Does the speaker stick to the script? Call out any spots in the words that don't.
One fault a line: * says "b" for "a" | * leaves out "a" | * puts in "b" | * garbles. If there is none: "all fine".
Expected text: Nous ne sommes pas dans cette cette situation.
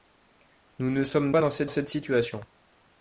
all fine